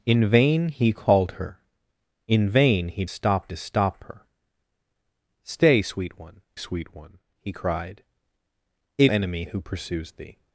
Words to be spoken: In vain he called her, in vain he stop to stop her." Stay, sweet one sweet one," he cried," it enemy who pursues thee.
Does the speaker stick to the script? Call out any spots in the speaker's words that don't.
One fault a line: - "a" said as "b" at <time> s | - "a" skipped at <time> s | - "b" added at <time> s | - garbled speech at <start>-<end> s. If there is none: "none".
none